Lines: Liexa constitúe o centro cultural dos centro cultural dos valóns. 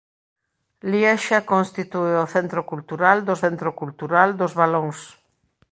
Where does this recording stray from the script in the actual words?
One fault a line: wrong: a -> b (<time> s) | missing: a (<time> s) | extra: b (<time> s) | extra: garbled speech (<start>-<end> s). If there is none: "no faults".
no faults